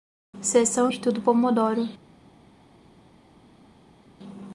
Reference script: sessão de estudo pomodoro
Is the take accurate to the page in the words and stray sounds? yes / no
no